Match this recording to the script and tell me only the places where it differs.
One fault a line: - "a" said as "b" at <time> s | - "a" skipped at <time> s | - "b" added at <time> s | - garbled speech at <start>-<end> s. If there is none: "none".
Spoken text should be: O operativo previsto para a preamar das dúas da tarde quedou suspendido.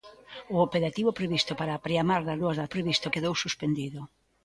- "tarde" said as "previsto" at 2.7 s